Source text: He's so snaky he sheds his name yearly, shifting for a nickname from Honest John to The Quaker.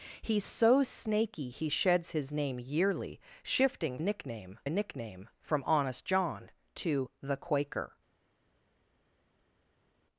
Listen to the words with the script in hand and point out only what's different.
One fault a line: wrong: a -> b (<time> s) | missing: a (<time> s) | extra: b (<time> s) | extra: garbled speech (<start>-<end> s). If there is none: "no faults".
wrong: for -> nickname (4.0 s)